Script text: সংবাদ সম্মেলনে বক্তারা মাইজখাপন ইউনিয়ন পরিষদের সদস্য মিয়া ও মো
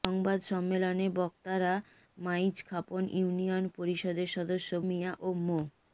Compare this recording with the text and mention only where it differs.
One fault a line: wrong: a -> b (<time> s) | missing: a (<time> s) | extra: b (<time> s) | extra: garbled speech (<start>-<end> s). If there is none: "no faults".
no faults